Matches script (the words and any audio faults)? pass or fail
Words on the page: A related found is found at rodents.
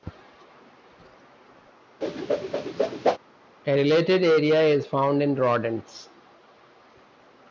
fail